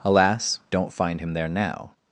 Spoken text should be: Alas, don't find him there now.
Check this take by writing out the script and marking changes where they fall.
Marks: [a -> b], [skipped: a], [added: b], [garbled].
Alas, don't find him there now.